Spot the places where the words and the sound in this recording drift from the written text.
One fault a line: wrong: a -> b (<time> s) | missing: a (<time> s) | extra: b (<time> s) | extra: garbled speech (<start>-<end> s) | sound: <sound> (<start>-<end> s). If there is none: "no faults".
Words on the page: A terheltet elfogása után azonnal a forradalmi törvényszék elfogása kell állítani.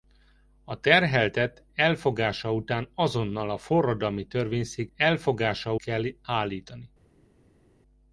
no faults